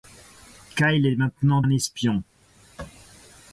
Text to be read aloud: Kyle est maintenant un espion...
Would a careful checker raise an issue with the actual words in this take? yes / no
no